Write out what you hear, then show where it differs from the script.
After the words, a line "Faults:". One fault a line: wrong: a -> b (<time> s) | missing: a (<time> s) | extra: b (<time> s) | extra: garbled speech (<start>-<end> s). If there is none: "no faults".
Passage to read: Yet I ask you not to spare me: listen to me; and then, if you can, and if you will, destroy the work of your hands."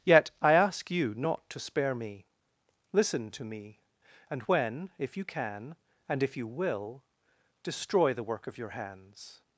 Yet I ask you not to spare me: listen to me; and when, if you can, and if you will, destroy the work of your hands."
Faults:
wrong: then -> when (4.4 s)